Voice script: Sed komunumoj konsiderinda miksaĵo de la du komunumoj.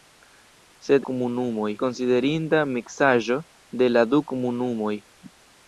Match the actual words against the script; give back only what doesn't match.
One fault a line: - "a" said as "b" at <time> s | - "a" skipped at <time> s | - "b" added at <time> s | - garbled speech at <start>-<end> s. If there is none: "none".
none